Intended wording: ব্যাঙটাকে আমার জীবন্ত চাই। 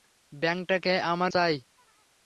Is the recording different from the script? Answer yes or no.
yes